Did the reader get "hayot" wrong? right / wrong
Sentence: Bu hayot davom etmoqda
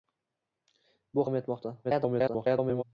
wrong